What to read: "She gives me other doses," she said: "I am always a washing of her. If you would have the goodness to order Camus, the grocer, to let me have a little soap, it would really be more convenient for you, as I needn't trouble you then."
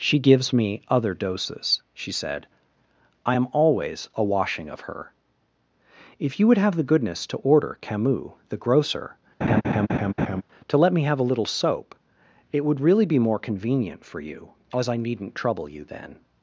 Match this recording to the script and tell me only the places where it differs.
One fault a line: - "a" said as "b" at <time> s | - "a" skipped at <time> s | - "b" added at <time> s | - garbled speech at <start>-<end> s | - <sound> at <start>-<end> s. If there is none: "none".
- laugh at 9.4-10.4 s